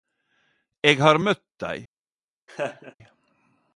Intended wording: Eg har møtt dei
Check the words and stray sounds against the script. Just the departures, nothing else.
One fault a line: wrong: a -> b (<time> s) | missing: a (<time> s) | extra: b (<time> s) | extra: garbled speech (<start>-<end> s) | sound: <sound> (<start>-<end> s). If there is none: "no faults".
sound: laugh (2.5-2.9 s)